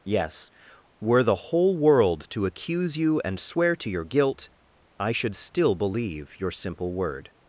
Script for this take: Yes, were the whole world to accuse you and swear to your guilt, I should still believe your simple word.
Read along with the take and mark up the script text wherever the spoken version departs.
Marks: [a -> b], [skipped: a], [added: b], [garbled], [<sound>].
Yes, were the whole world to accuse you and swear to your guilt, I should still believe your simple word.